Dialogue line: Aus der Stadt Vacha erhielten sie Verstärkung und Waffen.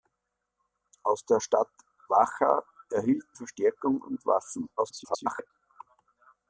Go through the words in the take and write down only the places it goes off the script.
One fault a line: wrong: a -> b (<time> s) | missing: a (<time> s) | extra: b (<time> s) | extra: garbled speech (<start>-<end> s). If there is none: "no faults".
missing: sie (3.4 s)
extra: garbled speech (4.8-5.5 s)